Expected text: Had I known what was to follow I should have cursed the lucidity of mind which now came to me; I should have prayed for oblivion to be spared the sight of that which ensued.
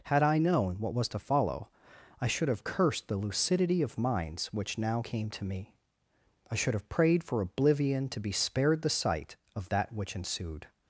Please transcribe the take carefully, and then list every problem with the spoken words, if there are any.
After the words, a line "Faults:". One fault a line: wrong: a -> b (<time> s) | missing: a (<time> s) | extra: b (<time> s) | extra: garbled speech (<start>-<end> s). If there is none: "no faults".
Had I known what was to follow I should have cursed the lucidity of minds which now came to me; I should have prayed for oblivion to be spared the sight of that which ensued.
Faults:
wrong: mind -> minds (4.0 s)